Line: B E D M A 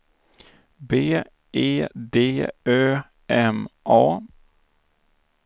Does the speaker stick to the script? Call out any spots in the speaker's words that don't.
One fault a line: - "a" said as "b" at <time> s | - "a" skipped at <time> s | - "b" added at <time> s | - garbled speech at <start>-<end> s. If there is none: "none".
- "Ö" added at 2.7 s